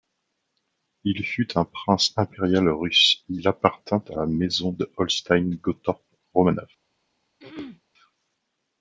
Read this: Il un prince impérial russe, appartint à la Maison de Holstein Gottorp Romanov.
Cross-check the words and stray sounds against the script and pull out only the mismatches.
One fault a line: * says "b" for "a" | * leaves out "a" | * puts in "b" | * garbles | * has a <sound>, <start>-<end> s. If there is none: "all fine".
* puts in "fut"
* puts in "il"
* has a throat clearing, 7.4-7.8 s